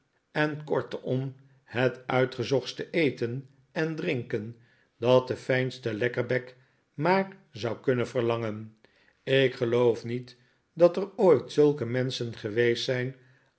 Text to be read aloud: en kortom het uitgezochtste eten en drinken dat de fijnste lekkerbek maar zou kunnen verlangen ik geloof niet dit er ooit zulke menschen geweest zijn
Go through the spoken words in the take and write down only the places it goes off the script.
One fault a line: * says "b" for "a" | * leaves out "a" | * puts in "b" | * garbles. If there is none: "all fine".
* says "dat" for "dit"